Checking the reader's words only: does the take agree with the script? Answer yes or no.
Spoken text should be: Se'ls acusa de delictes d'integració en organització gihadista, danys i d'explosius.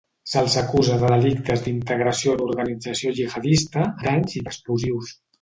yes